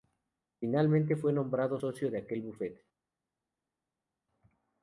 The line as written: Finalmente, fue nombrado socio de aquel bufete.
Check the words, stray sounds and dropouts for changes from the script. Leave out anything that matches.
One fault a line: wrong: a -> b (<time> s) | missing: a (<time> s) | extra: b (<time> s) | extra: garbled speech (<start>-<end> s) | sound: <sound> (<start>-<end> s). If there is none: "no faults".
no faults